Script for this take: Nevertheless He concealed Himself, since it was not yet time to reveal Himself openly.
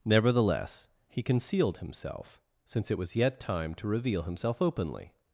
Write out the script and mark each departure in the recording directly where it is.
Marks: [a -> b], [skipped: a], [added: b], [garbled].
Nevertheless He concealed Himself, since it was [skipped: not] yet time to reveal Himself openly.